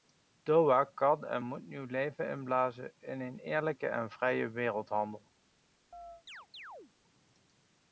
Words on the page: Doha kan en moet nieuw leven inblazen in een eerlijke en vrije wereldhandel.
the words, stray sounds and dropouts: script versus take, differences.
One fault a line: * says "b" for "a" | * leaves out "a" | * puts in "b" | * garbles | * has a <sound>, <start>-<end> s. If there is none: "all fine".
* has a chirp, 5.9-6.9 s